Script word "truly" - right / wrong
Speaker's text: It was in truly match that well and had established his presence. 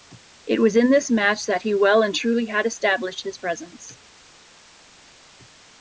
wrong